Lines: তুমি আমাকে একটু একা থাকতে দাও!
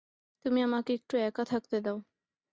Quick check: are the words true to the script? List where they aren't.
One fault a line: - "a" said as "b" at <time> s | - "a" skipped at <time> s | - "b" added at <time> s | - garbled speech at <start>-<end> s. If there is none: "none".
none